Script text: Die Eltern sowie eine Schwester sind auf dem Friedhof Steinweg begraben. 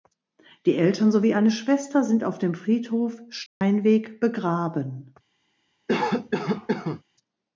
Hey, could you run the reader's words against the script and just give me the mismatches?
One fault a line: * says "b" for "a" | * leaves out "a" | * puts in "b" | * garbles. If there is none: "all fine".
all fine